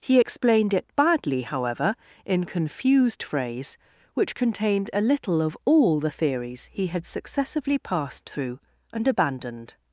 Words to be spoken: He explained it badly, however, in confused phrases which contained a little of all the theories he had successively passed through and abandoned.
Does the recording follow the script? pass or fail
fail